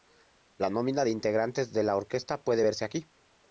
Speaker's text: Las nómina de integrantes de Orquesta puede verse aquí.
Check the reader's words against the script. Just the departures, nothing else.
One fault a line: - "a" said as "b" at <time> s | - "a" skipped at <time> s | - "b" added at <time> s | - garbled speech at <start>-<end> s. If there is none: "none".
- "Las" said as "La" at 0.6 s
- "la" added at 1.8 s